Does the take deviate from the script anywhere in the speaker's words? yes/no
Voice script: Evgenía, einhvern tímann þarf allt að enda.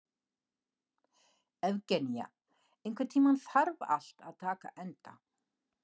yes